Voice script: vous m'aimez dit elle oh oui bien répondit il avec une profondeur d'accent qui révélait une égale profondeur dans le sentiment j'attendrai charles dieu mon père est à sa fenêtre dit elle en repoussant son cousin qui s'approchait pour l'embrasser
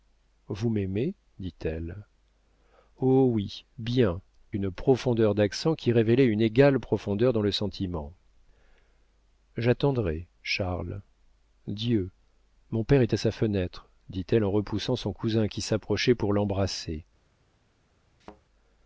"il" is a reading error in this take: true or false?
true